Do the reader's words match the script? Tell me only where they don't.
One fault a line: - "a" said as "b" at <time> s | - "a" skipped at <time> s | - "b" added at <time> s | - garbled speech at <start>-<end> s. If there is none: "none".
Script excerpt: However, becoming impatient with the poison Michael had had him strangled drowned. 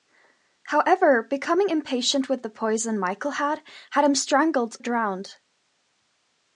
none